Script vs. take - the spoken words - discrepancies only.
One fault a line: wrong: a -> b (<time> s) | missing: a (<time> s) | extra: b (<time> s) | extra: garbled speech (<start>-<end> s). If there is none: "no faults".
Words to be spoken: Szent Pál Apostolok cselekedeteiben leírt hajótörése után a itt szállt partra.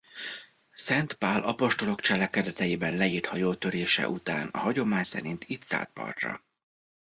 extra: hagyomány szerint (4.5 s)